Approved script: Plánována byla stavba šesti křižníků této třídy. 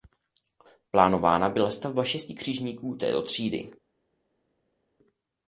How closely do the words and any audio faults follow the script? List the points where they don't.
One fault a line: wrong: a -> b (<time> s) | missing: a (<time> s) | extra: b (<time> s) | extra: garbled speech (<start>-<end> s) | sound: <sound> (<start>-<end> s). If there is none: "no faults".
no faults